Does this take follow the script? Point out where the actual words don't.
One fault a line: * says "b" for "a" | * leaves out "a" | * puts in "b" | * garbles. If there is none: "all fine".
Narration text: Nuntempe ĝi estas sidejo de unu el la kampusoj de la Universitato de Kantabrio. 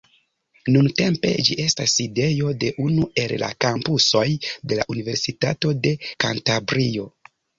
all fine